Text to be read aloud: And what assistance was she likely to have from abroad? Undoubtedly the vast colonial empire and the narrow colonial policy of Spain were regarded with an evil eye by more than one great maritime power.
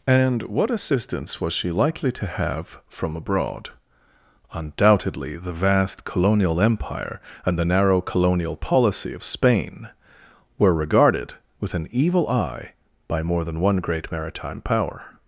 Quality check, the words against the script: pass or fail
pass